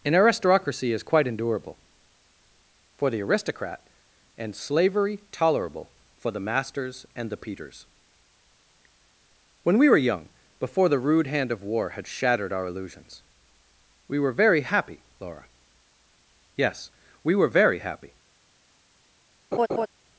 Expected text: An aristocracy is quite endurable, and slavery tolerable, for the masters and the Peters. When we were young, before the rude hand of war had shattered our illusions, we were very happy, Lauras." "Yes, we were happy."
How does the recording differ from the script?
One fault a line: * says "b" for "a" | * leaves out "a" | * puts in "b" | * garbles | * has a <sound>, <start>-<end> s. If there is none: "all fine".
* puts in "for the aristocrat"
* says "Laura" for "Lauras"
* puts in "very"
* has a laugh, 19.5-19.9 s